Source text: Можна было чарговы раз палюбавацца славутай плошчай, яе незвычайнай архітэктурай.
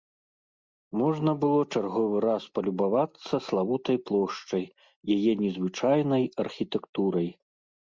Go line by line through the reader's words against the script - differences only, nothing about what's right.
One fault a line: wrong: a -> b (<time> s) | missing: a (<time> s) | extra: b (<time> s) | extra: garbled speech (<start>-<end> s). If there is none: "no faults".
no faults